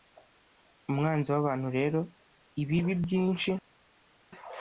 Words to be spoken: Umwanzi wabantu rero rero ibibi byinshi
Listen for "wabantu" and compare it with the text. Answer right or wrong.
right